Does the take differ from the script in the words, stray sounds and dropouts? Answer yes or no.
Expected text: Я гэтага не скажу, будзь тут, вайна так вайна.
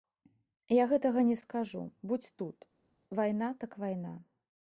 no